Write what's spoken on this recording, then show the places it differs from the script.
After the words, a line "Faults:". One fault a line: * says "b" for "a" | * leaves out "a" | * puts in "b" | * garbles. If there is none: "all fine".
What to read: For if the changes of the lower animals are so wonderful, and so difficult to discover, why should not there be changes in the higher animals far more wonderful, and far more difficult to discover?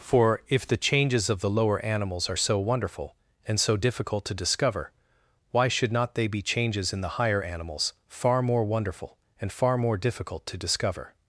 For if the changes of the lower animals are so wonderful, and so difficult to discover, why should not they be changes in the higher animals far more wonderful, and far more difficult to discover?
Faults:
* says "they" for "there"